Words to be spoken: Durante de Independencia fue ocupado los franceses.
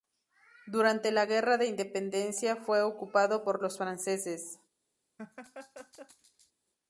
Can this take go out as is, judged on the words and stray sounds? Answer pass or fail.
fail